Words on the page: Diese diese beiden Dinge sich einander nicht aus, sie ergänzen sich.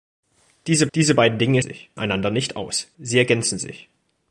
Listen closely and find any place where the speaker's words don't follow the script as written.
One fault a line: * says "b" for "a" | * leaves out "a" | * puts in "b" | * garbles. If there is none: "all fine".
all fine